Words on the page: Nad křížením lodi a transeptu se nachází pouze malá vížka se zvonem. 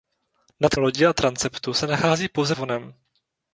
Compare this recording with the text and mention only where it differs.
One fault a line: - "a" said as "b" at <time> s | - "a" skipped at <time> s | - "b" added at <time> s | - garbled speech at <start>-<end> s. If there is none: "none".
- "křížením" skipped at 0.8 s
- "malá vížka se" skipped at 2.5 s